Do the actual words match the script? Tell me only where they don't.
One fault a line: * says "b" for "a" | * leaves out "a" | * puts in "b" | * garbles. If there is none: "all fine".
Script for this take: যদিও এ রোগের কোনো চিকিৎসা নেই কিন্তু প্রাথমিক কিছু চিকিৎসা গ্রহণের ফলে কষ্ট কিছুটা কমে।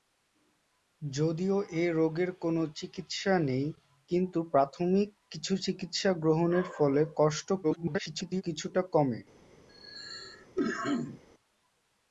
* garbles